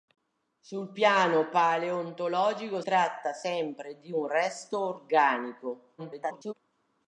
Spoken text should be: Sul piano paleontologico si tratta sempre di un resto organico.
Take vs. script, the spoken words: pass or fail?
fail